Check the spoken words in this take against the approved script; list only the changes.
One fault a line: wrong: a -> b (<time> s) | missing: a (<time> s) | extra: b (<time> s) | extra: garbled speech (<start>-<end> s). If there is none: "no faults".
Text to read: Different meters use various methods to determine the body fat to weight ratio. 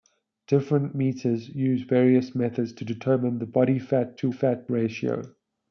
wrong: weight -> fat (4.3 s)